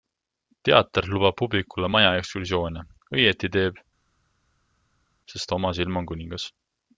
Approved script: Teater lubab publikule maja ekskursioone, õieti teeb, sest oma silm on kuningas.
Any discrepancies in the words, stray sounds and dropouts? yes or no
no